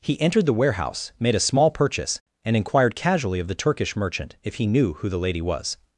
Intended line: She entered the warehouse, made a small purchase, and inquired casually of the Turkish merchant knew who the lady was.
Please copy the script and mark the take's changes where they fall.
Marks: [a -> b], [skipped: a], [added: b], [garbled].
[She -> He] entered the warehouse, made a small purchase, and inquired casually of the Turkish merchant [added: if he] knew who the lady was.